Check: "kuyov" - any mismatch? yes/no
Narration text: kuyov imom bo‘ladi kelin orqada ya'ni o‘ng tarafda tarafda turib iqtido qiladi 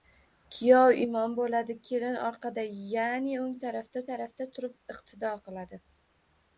no